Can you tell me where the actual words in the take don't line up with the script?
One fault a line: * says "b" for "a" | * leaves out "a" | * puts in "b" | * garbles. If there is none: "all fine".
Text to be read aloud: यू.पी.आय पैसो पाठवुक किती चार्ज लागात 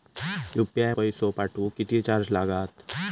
all fine